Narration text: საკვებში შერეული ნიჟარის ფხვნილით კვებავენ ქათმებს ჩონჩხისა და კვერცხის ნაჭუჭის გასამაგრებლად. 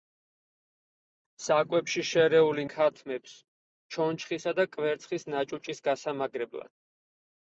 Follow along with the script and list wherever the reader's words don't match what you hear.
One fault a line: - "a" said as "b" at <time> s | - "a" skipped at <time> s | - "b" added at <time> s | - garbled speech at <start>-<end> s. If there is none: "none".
- "ნიჟარის ფხვნილით კვებავენ" skipped at 2.6 s